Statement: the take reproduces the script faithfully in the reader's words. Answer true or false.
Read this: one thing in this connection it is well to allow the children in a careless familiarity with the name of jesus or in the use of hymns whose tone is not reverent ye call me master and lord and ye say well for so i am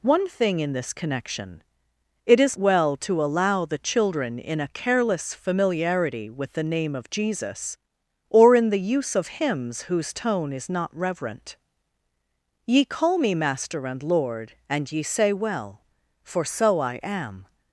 true